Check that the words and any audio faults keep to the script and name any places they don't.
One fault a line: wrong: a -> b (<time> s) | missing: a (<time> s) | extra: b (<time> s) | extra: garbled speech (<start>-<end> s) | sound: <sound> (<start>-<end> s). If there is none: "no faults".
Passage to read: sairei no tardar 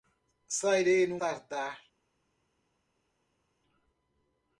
no faults